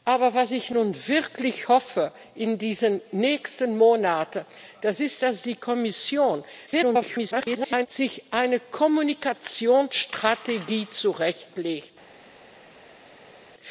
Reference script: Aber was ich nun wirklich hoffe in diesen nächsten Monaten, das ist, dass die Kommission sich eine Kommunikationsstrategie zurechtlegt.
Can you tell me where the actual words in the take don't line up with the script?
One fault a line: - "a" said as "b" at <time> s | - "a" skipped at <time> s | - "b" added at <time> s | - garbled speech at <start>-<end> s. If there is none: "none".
- garbled speech at 6.7-7.9 s